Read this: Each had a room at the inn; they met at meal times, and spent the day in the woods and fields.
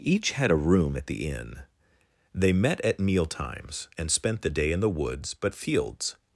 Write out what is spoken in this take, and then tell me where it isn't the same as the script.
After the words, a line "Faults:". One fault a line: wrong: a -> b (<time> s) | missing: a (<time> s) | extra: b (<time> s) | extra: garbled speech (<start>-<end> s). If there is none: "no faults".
Each had a room at the inn; they met at meal times, and spent the day in the woods but fields.
Faults:
wrong: and -> but (5.3 s)